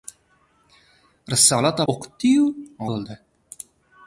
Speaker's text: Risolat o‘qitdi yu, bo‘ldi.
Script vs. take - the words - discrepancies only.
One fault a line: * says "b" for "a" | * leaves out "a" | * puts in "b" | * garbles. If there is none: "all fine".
all fine